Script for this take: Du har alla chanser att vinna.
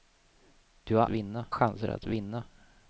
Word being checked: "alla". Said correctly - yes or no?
no